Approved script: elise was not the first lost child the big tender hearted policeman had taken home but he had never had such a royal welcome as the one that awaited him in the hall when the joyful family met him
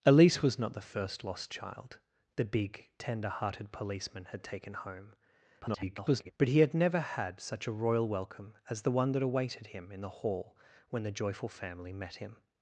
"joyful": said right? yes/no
yes